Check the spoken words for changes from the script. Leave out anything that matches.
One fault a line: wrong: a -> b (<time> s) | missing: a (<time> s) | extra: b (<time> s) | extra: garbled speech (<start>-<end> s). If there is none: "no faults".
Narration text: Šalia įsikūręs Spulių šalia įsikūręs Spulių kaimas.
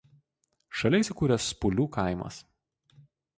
missing: šalia įsikūręs Spulių (1.9 s)